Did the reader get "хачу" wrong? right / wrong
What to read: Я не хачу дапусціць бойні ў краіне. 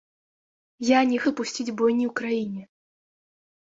wrong